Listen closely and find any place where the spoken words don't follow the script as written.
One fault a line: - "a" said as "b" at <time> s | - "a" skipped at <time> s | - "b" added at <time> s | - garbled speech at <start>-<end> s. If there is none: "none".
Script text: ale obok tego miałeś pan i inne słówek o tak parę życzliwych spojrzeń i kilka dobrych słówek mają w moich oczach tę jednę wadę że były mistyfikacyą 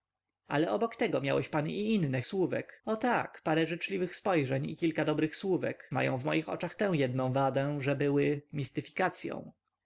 none